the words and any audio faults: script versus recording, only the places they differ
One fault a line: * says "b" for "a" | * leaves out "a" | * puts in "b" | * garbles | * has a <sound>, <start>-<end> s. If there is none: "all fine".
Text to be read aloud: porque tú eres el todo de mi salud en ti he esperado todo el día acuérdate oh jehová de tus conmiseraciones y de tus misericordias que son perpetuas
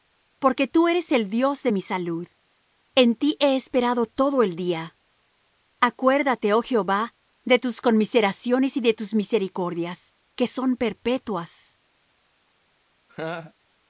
* says "dios" for "todo"
* has a laugh, 13.1-13.5 s